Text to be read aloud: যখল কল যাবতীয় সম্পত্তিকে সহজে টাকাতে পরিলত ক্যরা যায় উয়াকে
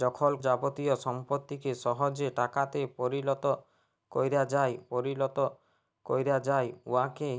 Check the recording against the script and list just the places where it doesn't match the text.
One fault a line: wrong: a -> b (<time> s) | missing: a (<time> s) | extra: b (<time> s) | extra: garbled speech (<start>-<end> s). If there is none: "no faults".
missing: কল (0.3 s)
extra: পরিলত ক্যরা যায় (4.9 s)